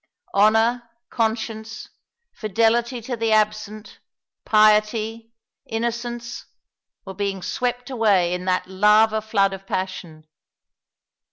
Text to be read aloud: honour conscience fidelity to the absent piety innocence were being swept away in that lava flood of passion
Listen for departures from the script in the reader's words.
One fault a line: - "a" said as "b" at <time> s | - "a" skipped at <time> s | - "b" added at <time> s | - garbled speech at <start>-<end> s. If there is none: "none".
none